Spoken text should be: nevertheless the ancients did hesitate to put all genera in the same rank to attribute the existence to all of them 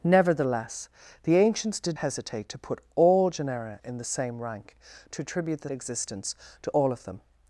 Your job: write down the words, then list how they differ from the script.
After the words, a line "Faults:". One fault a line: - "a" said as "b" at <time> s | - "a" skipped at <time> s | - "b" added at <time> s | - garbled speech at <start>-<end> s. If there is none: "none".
nevertheless the ancients did hesitate to put all genera in the same rank to attribute the existence to all of them
Faults:
none